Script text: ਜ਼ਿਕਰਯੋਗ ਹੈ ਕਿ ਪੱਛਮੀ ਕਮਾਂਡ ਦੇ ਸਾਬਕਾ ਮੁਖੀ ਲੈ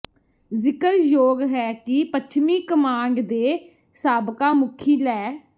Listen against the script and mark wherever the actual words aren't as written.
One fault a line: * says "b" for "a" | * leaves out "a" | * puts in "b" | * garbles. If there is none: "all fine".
all fine